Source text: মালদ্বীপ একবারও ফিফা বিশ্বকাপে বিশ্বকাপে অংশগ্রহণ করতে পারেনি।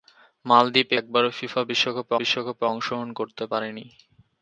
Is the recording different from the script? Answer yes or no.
no